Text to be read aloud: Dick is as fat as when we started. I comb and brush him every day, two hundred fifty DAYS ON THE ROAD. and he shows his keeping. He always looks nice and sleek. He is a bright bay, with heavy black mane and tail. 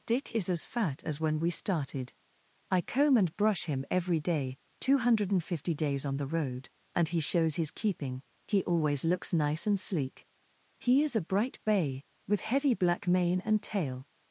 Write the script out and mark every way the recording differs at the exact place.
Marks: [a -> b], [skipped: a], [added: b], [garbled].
Dick is as fat as when we started. I comb and brush him every day, two hundred fifty DAYS ON THE ROAD. and he shows his keeping. He always looks nice and sleek. He is a bright bay, with heavy black mane and tail.